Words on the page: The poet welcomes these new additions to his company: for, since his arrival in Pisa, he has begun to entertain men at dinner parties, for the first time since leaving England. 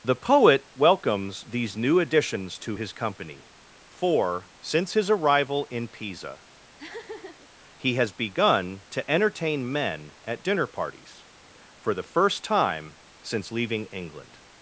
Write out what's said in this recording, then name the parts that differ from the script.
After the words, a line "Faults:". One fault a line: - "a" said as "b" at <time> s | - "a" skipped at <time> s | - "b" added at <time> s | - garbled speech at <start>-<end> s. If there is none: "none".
The poet welcomes these new additions to his company: for, since his arrival in Pisa, he has begun to entertain men at dinner parties, for the first time since leaving England.
Faults:
none